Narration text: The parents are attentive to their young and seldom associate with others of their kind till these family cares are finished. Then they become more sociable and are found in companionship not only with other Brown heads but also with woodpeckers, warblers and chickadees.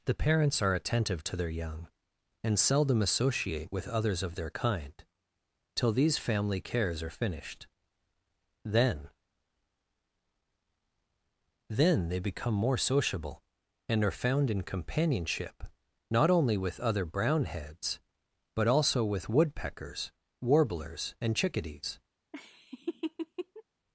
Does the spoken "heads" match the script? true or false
true